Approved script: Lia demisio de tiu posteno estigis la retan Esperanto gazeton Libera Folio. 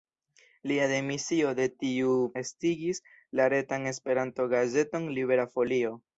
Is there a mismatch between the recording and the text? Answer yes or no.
yes